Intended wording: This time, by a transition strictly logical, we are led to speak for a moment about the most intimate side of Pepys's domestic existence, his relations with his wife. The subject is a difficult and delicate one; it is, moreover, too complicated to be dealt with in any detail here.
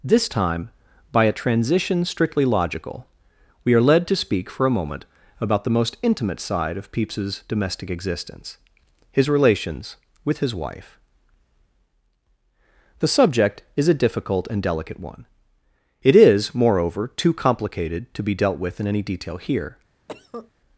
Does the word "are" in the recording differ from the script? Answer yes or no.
no